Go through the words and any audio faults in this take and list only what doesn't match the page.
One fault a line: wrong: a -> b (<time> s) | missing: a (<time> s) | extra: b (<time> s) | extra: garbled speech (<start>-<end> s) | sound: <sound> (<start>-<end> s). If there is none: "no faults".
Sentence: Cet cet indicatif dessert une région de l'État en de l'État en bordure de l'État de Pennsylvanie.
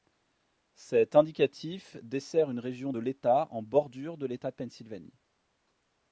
missing: cet (1.1 s)
missing: de l'État en (3.6 s)